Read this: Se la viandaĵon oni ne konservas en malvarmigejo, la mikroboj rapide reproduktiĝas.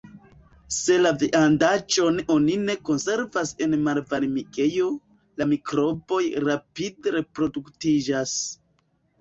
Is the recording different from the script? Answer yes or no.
no